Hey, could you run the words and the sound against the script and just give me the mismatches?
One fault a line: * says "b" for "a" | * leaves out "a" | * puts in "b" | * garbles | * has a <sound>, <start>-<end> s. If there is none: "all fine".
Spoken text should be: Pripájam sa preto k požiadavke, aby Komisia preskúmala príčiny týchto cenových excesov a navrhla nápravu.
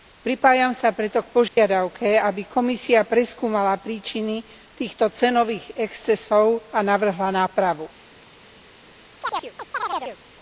* has a dropout, 1.5-1.6 s
* has a chirp, 9.2-10.2 s